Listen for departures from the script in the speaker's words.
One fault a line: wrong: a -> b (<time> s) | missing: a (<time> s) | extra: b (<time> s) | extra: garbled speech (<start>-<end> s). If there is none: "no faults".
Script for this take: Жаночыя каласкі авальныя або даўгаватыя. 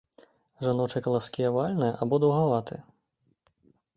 no faults